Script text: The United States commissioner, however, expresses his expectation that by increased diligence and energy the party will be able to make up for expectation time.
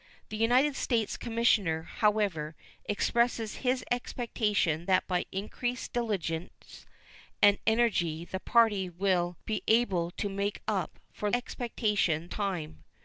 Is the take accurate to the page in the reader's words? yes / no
yes